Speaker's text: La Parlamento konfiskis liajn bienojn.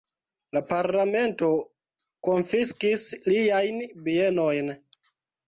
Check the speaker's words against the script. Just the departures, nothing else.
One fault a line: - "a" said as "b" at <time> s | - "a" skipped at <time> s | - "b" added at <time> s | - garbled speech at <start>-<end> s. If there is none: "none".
none